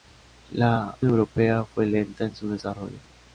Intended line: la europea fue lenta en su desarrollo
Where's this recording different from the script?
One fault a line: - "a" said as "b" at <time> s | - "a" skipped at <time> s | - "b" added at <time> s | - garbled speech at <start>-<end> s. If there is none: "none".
none